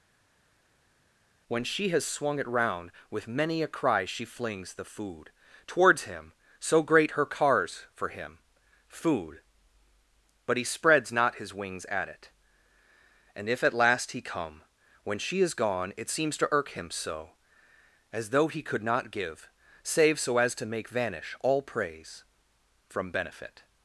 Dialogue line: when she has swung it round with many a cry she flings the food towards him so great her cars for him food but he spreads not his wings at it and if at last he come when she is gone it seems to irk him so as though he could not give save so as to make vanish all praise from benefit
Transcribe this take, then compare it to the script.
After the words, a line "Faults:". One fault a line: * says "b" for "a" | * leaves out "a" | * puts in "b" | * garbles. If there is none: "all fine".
when she has swung it round with many a cry she flings the food towards him so great her cars for him food but he spreads not his wings at it and if at last he come when she is gone it seems to irk him so as though he could not give save so as to make vanish all praise from benefit
Faults:
all fine